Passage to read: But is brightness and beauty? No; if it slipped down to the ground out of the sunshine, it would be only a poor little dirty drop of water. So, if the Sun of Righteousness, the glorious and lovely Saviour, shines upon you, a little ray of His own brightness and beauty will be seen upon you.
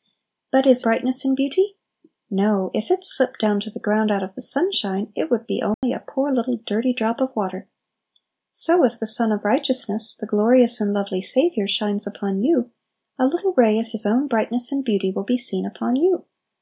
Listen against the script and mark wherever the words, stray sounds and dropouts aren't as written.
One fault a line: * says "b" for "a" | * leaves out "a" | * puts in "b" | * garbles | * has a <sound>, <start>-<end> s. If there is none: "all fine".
* has a dropout, 5.7-5.8 s